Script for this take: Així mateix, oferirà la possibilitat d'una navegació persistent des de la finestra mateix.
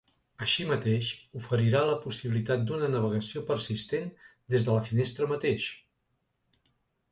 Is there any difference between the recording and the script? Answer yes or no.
no